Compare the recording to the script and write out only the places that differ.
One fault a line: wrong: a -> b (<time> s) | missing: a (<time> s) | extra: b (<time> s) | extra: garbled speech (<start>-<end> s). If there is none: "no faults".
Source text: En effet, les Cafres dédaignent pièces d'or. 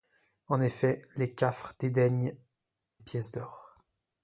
no faults